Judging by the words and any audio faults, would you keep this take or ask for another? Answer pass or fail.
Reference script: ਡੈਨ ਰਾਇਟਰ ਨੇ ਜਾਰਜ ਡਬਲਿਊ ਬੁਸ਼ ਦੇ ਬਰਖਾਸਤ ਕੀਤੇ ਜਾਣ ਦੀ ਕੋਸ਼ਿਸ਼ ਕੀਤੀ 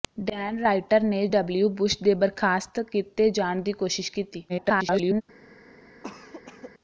fail